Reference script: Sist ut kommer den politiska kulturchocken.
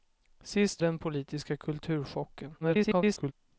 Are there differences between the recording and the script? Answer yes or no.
yes